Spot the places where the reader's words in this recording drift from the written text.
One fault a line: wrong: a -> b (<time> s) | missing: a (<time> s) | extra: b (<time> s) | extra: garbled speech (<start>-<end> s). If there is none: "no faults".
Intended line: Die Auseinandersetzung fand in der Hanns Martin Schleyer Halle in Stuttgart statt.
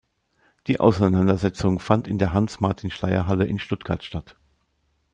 no faults